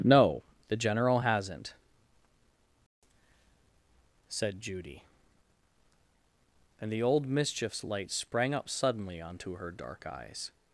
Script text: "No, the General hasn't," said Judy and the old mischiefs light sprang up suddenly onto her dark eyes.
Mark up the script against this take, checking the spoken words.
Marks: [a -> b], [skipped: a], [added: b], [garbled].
"No, the General hasn't," said Judy and the old mischiefs light sprang up suddenly onto her dark eyes.